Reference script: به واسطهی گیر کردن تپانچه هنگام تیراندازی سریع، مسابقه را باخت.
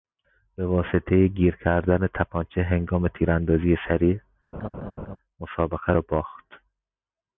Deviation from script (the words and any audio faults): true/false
true